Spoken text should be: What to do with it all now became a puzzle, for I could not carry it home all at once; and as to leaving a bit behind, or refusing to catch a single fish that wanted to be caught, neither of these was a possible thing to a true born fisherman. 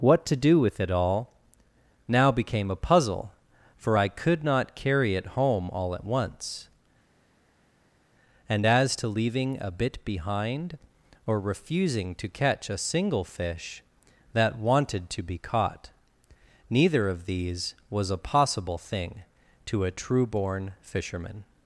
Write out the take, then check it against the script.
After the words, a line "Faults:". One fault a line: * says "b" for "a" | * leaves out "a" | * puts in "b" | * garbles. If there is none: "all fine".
What to do with it all now became a puzzle, for I could not carry it home all at once; and as to leaving a bit behind, or refusing to catch a single fish that wanted to be caught, neither of these was a possible thing to a true born fisherman.
Faults:
all fine